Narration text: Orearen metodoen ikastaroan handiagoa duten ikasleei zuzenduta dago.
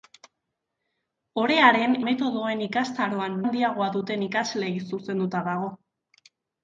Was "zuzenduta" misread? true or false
false